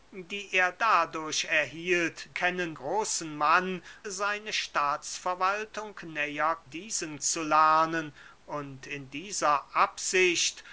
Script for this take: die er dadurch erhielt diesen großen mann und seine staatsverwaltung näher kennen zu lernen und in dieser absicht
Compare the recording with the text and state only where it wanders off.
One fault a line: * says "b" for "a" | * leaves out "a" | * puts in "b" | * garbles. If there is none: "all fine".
* says "kennen" for "diesen"
* leaves out "und"
* says "diesen" for "kennen"